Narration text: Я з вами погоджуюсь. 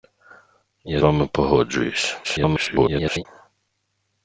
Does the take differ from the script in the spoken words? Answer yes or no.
yes